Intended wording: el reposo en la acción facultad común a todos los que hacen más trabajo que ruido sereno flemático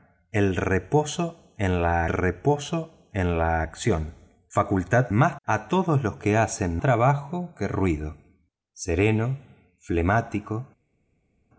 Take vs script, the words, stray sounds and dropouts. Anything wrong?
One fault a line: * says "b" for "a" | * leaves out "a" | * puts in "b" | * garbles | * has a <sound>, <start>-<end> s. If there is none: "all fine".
* puts in "reposo en la"
* says "más" for "común"
* leaves out "más"